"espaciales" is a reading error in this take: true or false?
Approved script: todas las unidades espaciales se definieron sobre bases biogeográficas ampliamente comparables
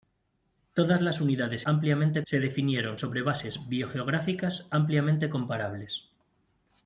true